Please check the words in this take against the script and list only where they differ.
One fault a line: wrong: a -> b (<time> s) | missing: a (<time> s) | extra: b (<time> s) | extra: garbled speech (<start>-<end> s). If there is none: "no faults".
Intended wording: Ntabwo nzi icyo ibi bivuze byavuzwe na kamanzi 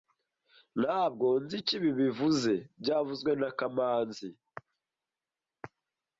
no faults